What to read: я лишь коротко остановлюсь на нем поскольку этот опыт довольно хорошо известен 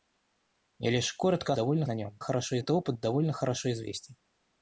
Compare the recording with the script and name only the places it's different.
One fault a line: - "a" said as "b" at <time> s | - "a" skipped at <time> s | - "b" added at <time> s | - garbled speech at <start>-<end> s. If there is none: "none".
- "остановлюсь" said as "довольно" at 1.5 s
- "поскольку" said as "хорошо" at 2.2 s